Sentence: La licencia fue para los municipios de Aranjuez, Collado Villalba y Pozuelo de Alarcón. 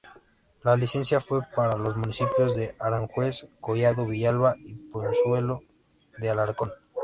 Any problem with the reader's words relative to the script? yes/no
no